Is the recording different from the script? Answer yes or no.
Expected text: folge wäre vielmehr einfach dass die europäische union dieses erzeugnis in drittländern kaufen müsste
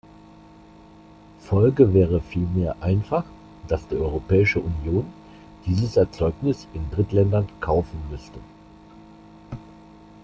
no